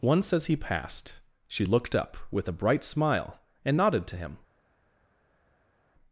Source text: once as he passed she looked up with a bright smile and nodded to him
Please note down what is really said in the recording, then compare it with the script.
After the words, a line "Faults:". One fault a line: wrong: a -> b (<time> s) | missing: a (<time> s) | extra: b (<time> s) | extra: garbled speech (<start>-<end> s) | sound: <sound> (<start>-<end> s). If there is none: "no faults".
once as he passed she looked up with a bright smile and nodded to him
Faults:
no faults